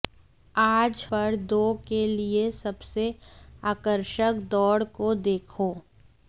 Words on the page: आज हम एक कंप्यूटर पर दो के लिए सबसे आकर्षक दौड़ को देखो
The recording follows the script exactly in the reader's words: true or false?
false